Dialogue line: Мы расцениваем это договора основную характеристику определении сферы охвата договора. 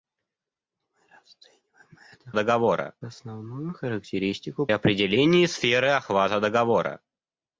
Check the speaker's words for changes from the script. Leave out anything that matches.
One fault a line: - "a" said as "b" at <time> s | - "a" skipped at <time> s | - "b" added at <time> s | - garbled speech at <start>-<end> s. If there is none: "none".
none